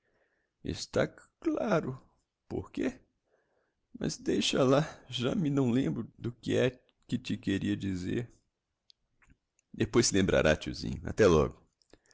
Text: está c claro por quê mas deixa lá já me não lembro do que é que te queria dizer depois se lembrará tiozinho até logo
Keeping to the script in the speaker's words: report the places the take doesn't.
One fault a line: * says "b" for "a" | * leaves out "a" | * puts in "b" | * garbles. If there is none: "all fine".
all fine